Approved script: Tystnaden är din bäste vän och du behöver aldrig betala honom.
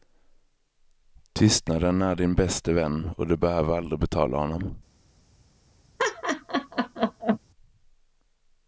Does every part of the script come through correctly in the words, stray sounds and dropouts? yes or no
no